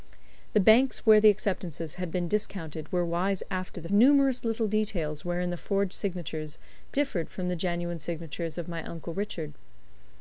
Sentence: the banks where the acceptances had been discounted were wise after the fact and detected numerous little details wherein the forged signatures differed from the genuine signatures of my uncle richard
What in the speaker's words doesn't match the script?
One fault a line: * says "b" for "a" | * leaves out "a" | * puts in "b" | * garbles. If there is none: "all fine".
* leaves out "fact and detected"